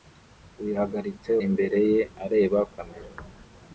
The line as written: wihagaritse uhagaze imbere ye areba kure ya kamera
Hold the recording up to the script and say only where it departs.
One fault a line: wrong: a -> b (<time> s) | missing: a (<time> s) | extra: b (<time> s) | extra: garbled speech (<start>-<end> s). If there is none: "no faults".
missing: uhagaze (1.3 s)
missing: kure ya (2.6 s)